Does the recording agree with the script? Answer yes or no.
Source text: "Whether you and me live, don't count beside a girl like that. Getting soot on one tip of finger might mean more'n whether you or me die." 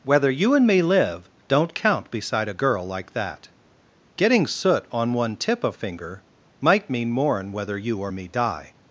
yes